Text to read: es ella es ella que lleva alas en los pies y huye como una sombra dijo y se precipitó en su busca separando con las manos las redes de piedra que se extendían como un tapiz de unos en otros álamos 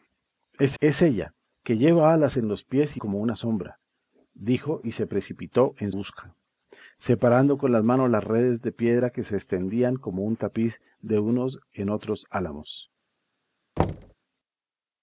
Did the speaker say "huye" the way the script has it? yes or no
no